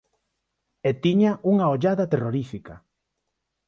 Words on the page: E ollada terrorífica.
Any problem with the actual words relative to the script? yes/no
yes